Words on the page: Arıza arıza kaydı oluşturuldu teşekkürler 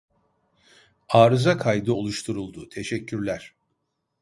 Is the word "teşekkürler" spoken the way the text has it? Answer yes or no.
yes